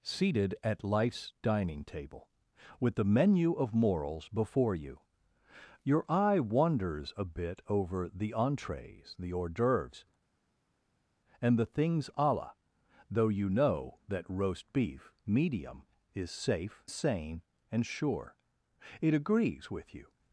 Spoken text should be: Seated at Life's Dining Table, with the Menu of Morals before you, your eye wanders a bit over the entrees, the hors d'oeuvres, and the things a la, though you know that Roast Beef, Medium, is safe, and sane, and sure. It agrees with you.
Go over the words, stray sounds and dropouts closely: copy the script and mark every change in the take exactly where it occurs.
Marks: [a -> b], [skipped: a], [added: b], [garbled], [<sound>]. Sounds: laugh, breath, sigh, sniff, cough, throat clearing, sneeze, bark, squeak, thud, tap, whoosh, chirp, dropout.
Seated at Life's Dining Table, with the Menu of Morals before you, your eye wanders a bit over the entrees, the hors d'oeuvres, and the things a la, though you know that Roast Beef, Medium, is safe, [skipped: and] sane, and sure. It agrees with you.